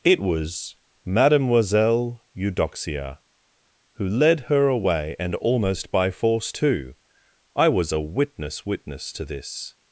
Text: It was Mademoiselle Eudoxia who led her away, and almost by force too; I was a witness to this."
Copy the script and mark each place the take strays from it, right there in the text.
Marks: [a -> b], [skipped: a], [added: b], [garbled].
It was Mademoiselle Eudoxia who led her away, and almost by force too; I was a witness [added: witness] to this."